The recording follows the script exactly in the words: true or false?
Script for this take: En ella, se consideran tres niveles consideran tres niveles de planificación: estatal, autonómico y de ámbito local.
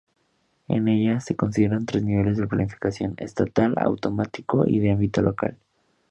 false